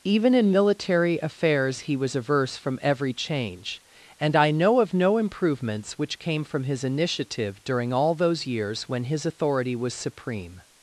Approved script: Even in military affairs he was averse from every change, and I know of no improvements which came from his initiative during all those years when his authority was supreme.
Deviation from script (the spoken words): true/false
false